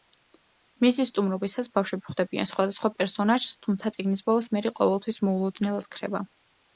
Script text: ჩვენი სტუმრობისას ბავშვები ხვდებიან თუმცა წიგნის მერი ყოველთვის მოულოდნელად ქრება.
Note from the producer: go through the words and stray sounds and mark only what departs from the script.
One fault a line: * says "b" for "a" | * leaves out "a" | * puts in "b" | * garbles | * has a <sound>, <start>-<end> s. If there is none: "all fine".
* says "მისი" for "ჩვენი"
* puts in "სხვადასხვა პერსონაჟს"
* puts in "ბოლოს"